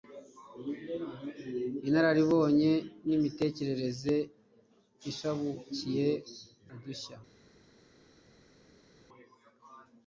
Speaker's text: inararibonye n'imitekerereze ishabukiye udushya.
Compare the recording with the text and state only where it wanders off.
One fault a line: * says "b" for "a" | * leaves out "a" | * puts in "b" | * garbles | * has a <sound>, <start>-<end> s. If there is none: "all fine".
all fine